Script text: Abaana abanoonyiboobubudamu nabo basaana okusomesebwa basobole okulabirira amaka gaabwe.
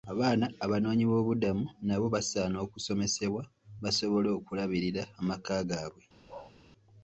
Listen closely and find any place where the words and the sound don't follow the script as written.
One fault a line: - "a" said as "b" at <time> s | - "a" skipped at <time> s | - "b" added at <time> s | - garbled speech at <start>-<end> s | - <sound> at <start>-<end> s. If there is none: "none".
- bark at 6.3-6.5 s